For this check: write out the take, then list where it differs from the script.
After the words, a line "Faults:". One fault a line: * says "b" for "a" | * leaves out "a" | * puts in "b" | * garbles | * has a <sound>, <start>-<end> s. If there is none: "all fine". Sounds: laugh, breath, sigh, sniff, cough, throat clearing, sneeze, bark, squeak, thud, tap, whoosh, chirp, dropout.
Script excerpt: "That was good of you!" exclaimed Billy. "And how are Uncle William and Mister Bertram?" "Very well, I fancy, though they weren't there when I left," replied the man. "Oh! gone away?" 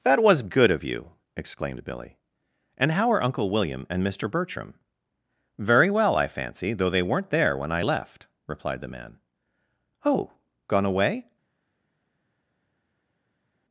"That was good of you!" exclaimed Billy. "And how are Uncle William and Mister Bertram?" "Very well, I fancy, though they weren't there when I left," replied the man. "Oh! gone away?"
Faults:
all fine